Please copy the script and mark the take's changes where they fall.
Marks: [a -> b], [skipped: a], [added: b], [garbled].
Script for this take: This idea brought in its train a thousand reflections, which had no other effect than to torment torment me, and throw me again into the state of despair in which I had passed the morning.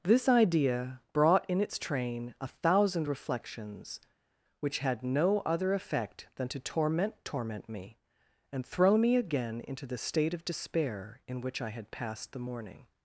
This idea brought in its train a thousand reflections, which had no other effect than to torment torment me, and throw me again into the state of despair in which I had passed the morning.